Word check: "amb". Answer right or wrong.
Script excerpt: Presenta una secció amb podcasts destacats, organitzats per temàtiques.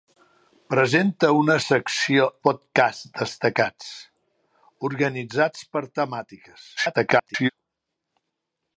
wrong